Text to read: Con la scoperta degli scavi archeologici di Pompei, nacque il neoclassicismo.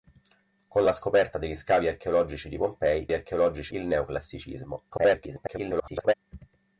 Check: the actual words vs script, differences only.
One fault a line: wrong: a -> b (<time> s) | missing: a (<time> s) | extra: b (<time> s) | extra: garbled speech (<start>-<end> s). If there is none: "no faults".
wrong: nacque -> archeologici (3.1 s)
extra: garbled speech (4.9-6.1 s)